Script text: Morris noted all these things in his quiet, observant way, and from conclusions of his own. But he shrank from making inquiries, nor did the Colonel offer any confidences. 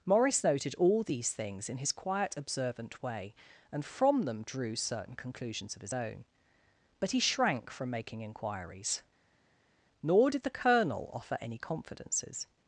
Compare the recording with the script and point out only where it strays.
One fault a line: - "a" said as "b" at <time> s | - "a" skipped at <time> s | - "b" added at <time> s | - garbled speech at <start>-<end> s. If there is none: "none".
- "them drew certain" added at 4.2 s